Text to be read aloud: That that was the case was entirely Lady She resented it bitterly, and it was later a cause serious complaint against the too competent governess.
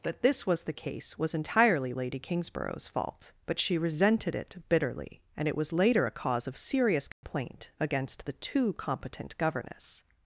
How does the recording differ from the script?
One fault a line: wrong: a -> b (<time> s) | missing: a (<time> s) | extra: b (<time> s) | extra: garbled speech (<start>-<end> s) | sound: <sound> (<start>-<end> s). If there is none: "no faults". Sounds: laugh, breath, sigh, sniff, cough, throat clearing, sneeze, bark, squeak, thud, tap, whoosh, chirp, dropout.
wrong: that -> this (0.2 s)
extra: Kingsborough's fault but (2.2 s)
extra: of (6.5 s)
sound: dropout (7.1-7.2 s)